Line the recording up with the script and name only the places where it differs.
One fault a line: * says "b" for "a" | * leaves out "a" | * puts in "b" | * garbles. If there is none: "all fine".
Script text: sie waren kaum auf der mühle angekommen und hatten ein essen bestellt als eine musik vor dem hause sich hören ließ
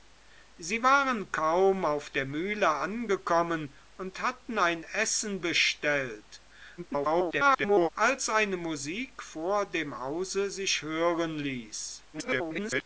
* garbles
* garbles